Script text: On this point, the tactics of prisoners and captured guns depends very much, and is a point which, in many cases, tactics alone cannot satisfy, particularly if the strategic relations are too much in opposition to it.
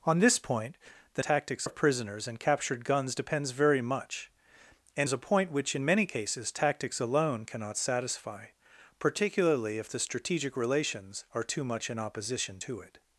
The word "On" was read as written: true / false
true